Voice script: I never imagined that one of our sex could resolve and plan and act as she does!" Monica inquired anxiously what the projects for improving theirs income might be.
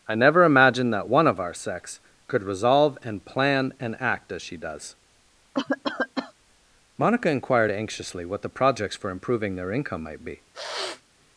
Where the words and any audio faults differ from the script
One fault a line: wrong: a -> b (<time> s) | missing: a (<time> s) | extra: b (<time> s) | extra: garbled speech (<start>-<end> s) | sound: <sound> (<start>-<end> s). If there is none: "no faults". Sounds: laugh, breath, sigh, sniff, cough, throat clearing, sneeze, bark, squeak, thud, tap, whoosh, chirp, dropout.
sound: cough (5.5-6.3 s)
wrong: theirs -> their (9.6 s)
sound: sniff (10.5-11.0 s)